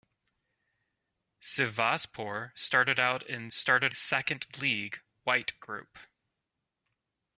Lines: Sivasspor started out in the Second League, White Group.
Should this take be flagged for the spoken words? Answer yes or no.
yes